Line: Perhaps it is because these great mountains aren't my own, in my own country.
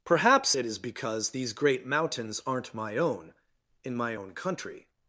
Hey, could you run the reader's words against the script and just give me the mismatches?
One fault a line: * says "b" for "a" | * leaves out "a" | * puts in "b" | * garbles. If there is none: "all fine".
all fine